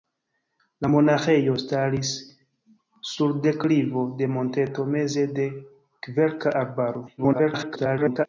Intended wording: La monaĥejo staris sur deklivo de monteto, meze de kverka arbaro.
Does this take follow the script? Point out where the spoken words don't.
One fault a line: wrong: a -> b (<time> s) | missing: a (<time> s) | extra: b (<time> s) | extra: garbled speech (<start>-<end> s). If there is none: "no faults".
extra: garbled speech (7.2-8.3 s)